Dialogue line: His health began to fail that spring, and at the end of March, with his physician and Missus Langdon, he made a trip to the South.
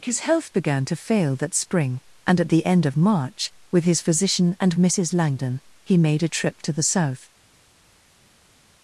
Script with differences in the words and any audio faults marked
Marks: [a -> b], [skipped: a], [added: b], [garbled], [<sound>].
His health began to fail that spring, and at the end of March, with his physician and Missus Langdon, he made a trip to the South.